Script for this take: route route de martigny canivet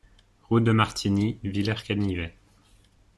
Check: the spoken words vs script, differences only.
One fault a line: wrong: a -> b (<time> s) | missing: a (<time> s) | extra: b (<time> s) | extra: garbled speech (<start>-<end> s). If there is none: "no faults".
missing: route (0.6 s)
extra: villers (1.4 s)